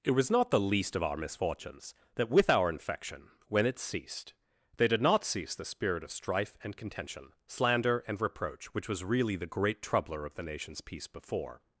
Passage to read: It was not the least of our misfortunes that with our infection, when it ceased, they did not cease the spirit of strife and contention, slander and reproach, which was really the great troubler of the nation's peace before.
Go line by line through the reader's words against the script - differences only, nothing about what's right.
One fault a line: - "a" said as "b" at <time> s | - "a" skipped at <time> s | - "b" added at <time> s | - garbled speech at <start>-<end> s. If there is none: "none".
none